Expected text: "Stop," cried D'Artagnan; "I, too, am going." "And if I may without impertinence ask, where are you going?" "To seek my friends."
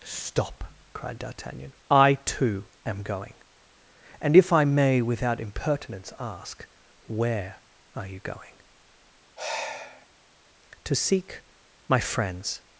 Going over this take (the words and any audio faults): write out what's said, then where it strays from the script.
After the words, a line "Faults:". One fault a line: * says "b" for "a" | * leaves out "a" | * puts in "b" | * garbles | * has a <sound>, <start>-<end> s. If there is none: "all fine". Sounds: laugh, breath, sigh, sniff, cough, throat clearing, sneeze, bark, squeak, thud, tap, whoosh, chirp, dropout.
"Stop," cried D'Artagnan; "I, too, am going." "And if I may without impertinence ask, where are you going?" "To seek my friends."
Faults:
* has a sigh, 9.4-10.1 s